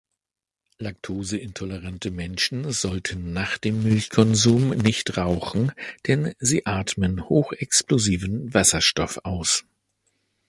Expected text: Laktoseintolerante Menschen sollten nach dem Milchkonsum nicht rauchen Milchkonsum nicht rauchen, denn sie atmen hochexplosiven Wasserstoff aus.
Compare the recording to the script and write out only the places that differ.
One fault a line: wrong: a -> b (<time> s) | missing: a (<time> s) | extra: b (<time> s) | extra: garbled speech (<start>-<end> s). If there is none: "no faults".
missing: Milchkonsum nicht rauchen (5.7 s)